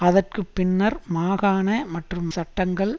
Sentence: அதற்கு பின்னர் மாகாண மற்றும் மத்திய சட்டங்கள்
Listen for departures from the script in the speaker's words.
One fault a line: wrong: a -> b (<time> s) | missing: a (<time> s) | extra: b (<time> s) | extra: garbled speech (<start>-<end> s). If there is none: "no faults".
missing: மத்திய (2.3 s)